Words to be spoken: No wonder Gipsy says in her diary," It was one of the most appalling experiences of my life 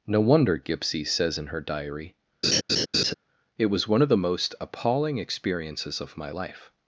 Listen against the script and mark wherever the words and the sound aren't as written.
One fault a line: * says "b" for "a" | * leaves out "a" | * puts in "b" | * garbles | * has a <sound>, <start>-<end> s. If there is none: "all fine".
* has a laugh, 2.4-3.1 s